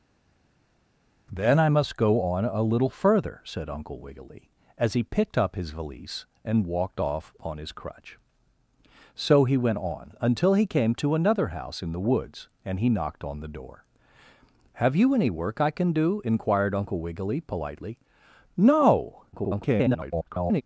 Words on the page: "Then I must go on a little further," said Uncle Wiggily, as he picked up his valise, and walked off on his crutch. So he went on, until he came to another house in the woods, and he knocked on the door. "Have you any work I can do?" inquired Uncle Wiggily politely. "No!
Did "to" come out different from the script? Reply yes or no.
no